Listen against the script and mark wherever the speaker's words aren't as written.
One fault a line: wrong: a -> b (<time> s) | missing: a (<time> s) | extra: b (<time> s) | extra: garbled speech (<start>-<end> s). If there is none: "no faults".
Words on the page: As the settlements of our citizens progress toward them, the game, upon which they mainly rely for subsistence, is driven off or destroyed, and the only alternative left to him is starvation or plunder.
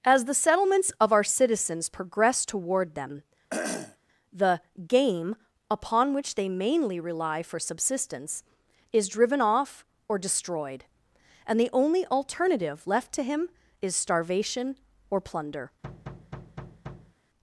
no faults